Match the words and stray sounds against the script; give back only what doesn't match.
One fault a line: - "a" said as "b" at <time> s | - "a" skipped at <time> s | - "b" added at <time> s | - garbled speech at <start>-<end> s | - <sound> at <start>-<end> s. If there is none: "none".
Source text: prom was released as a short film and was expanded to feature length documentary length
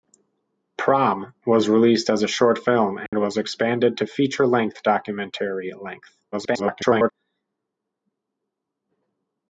- dropout at 3.1-3.1 s
- garbled speech at 6.3-7.1 s